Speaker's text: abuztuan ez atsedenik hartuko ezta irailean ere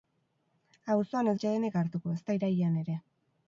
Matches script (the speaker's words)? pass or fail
pass